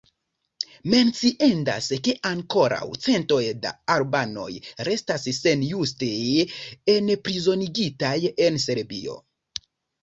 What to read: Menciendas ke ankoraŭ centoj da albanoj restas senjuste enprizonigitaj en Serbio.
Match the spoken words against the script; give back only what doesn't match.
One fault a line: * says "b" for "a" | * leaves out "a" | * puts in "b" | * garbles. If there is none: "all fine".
all fine